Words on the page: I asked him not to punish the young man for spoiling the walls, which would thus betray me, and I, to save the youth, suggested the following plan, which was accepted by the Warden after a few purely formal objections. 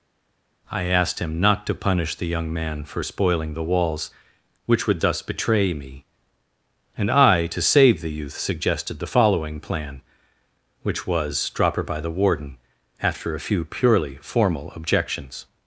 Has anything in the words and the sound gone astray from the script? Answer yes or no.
yes